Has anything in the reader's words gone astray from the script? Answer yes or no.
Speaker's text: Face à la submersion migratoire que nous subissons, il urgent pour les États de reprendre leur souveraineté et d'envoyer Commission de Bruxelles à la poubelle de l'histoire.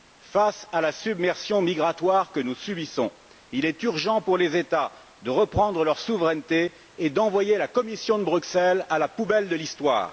yes